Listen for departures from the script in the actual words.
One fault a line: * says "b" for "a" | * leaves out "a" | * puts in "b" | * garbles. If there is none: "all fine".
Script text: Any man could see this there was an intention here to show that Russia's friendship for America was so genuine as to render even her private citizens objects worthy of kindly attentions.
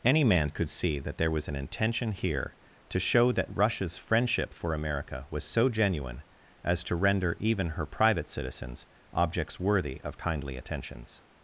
* says "that" for "this"